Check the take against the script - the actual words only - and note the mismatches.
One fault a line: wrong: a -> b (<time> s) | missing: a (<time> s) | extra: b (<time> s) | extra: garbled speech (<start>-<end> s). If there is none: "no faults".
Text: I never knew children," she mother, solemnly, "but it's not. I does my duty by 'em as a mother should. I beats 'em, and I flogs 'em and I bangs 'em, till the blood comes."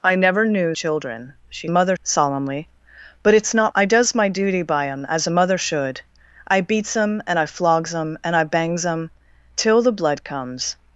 no faults